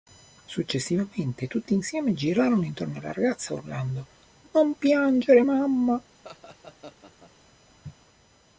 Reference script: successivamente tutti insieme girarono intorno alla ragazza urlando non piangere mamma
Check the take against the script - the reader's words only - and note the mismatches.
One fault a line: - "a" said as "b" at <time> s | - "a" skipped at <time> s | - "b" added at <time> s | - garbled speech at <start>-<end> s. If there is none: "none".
none